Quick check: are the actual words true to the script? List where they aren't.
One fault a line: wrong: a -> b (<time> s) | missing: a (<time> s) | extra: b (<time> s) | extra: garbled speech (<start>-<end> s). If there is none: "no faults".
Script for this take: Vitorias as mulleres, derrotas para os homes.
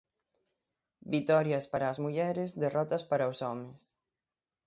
extra: para (1.7 s)